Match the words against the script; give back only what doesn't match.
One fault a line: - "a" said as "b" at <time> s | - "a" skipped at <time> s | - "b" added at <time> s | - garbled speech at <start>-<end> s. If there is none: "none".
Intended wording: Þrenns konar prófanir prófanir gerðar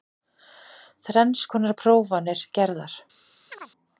- "prófanir" skipped at 2.4 s